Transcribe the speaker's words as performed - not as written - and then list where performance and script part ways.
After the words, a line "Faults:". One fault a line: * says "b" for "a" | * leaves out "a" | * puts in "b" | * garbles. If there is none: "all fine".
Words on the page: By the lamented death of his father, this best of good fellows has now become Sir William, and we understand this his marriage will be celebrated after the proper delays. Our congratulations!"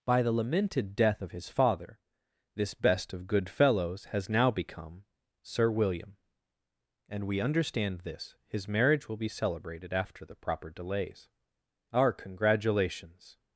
By the lamented death of his father, this best of good fellows has now become Sir William, and we understand this his marriage will be celebrated after the proper delays. Our congratulations!"
Faults:
all fine